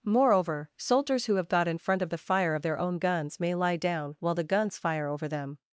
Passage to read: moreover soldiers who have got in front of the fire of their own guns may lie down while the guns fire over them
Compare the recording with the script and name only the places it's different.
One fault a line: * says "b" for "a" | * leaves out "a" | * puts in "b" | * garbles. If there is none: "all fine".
all fine